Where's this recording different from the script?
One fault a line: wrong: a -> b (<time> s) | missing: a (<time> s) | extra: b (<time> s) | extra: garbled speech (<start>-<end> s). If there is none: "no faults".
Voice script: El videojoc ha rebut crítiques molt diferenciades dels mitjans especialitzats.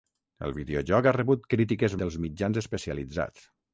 missing: molt diferenciades (2.0 s)